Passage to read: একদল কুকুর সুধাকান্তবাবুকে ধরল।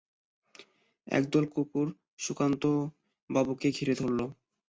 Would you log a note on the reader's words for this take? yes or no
yes